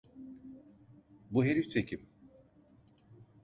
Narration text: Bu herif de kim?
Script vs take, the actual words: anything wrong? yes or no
no